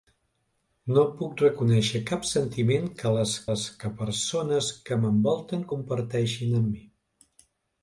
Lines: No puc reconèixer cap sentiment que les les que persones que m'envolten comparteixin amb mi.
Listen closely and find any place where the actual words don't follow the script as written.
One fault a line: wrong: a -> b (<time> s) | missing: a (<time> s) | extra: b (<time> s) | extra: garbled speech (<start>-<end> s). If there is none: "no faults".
no faults